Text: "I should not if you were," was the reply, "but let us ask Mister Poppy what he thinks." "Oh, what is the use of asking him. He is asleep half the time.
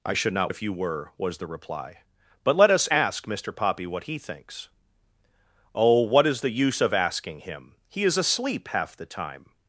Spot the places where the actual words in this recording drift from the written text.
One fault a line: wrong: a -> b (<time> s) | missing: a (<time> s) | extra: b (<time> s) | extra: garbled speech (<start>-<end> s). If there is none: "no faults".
no faults